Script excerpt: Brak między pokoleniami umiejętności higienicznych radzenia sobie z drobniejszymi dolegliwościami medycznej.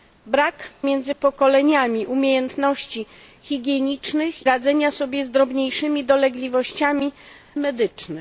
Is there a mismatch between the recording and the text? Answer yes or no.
no